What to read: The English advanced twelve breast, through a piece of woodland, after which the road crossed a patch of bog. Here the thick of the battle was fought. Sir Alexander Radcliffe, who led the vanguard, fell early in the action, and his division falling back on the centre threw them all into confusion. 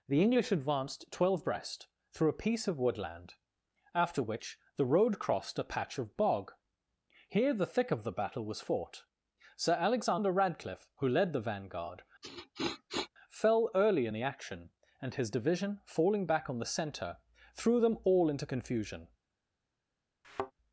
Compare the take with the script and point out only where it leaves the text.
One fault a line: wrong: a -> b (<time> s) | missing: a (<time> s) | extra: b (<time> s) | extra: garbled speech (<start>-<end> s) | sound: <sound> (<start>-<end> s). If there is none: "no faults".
sound: sniff (12.2-13.1 s)
sound: thud (20.2-20.5 s)